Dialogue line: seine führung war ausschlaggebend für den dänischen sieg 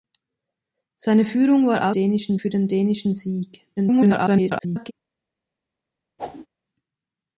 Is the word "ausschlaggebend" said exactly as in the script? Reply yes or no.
no